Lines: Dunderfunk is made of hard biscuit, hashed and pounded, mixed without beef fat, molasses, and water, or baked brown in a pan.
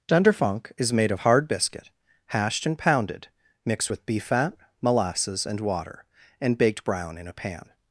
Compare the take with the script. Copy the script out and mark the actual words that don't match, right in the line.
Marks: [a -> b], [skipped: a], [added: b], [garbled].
Dunderfunk is made of hard biscuit, hashed and pounded, mixed [without -> with] beef fat, molasses, and water, [or -> and] baked brown in a pan.